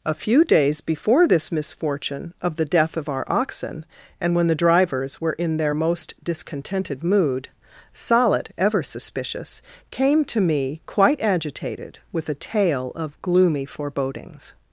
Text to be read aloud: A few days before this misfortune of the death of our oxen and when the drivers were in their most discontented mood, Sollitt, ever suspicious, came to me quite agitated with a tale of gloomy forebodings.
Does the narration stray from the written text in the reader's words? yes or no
no